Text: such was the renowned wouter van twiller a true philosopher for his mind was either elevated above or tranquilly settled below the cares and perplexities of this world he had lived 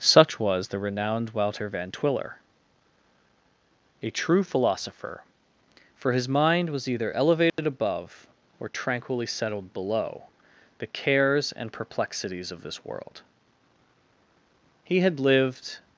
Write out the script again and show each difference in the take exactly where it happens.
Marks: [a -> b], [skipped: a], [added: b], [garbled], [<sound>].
such was the renowned wouter van twiller a true philosopher for his mind was either elevated [dropout] above or tranquilly settled below the cares and perplexities of this world he had lived